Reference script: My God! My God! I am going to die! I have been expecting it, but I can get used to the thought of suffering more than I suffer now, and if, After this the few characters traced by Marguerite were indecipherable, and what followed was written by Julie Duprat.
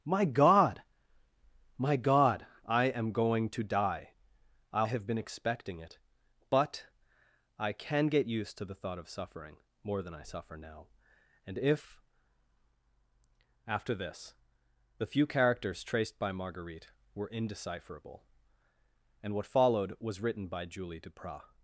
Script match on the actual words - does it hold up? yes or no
yes